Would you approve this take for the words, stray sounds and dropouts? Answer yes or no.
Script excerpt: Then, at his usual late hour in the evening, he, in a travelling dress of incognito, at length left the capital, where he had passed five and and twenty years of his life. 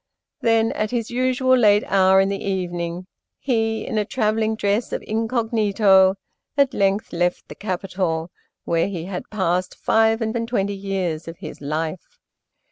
yes